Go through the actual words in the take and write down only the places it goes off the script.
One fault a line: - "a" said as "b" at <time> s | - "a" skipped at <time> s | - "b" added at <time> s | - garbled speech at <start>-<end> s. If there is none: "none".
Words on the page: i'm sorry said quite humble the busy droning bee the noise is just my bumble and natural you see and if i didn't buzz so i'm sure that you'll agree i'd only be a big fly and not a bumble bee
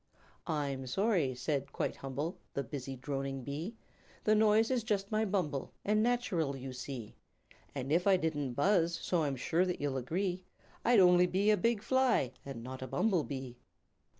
none